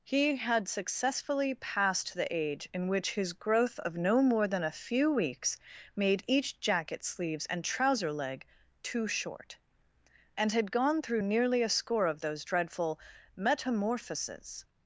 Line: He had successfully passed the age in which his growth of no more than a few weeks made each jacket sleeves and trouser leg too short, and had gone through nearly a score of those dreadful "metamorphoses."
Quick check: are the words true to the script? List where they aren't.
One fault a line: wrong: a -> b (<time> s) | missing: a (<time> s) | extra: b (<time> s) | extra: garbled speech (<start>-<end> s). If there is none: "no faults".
no faults